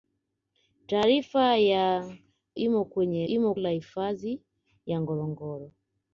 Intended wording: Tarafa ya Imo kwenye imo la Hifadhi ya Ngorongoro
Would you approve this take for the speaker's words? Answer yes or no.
yes